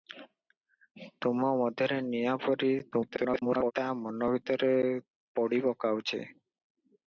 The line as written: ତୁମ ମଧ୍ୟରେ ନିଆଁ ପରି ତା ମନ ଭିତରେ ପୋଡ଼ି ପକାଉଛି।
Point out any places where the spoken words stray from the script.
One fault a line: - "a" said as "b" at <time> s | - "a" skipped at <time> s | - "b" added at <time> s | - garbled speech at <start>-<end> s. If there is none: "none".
- garbled speech at 2.9-3.7 s